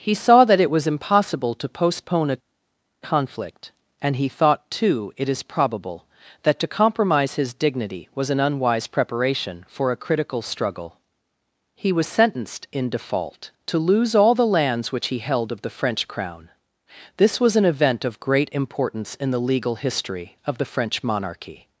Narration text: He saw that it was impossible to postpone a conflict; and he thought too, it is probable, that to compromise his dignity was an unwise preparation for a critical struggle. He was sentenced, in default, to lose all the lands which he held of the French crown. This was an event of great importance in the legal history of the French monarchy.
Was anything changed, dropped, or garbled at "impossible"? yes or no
no